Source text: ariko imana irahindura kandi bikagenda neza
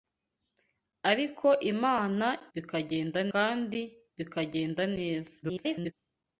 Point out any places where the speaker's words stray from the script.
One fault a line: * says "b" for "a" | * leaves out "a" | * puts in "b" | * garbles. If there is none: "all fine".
* says "bikagenda" for "irahindura"
* garbles